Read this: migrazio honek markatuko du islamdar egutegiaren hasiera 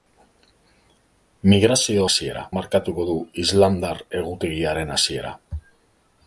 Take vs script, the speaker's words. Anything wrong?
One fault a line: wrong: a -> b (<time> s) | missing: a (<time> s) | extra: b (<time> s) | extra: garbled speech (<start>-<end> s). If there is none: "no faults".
wrong: honek -> hasiera (2.1 s)